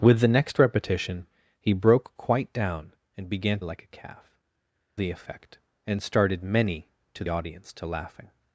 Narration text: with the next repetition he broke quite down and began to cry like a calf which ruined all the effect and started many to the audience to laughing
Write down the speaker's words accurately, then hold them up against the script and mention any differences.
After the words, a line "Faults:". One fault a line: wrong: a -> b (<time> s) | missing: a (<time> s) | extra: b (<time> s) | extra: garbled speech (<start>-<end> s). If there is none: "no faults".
with the next repetition he broke quite down and began like a calf the effect and started many to audience to laughing
Faults:
missing: to cry (3.6 s)
missing: which ruined all (4.4 s)
missing: the (7.2 s)